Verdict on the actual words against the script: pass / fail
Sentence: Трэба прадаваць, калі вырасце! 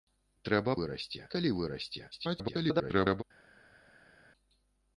fail